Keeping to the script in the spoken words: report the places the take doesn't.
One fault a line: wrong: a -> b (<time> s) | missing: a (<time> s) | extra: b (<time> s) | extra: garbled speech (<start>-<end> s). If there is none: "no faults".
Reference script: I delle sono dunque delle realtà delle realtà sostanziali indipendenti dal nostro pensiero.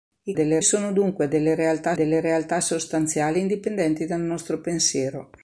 no faults